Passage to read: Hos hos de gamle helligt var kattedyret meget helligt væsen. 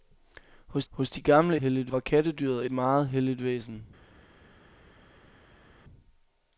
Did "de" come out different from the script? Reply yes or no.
no